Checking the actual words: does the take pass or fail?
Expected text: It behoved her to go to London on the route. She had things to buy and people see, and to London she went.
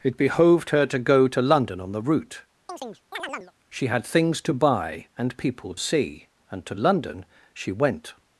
pass